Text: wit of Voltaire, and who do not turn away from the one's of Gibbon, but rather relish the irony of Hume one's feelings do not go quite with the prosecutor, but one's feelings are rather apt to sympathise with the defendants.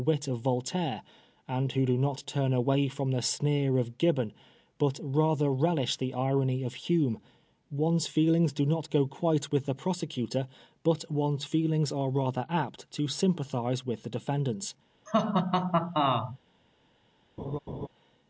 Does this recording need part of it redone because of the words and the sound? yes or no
yes